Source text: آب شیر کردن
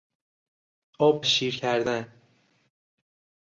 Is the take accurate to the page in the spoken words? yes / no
yes